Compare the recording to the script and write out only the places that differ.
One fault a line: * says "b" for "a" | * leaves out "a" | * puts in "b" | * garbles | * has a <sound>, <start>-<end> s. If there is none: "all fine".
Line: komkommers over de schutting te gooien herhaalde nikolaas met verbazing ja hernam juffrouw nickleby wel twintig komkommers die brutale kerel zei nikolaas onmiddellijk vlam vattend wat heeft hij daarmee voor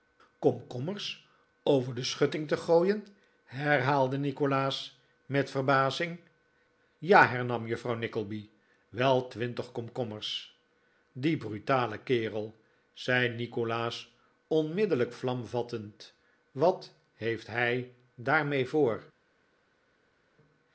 all fine